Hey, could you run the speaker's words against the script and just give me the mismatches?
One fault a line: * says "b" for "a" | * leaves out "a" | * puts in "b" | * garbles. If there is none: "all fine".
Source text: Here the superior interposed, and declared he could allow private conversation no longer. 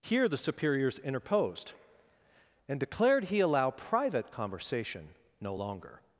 * says "superiors" for "superior"
* leaves out "could"